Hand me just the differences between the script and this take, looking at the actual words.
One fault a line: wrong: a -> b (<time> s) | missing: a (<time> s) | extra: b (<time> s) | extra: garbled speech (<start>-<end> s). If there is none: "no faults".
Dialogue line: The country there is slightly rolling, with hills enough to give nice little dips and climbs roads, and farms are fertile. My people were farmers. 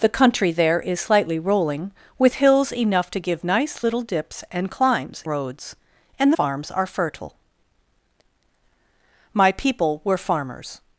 no faults